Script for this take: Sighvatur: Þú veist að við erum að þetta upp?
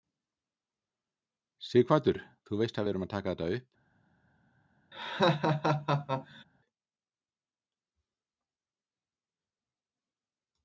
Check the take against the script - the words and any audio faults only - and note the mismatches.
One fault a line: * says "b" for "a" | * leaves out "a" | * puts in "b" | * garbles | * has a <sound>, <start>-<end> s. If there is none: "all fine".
* puts in "taka"
* has a laugh, 4.9-6.4 s